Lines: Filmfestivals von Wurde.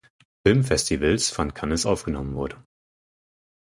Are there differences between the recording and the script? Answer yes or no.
yes